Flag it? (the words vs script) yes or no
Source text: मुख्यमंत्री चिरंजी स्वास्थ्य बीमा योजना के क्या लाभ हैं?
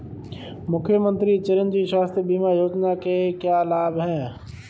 no